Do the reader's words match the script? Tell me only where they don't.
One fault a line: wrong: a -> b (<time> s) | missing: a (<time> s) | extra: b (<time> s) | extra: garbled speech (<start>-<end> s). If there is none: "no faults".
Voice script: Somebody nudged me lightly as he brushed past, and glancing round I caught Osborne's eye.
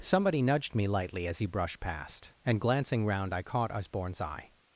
no faults